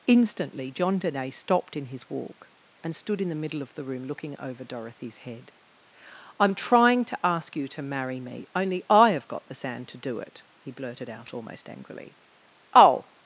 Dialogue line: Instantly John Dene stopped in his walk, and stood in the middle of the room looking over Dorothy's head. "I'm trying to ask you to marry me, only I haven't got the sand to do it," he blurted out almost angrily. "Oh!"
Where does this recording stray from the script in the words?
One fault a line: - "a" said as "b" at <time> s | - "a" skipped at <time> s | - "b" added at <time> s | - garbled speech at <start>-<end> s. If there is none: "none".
- "haven't" said as "have" at 9.1 s